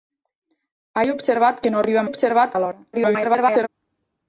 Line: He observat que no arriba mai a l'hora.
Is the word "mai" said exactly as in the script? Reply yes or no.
no